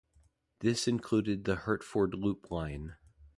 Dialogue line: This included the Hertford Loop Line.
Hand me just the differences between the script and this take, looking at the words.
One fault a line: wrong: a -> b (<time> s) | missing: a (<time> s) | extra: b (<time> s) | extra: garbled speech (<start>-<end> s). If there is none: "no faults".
no faults